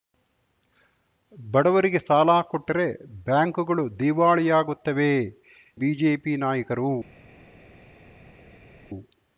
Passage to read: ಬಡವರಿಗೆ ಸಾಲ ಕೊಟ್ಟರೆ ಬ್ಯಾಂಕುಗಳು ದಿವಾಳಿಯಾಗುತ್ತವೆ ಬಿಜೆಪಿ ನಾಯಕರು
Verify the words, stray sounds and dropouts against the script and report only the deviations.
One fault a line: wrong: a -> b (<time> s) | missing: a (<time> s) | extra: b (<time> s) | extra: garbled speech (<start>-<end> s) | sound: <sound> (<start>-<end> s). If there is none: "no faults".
no faults